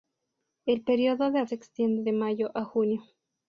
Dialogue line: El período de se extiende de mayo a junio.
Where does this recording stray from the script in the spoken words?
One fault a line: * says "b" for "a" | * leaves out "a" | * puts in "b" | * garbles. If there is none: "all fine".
all fine